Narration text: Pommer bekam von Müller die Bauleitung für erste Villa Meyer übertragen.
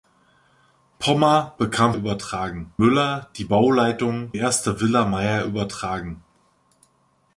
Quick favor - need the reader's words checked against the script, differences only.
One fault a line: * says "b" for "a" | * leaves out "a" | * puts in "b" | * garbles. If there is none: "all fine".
* says "übertragen" for "von"
* leaves out "für"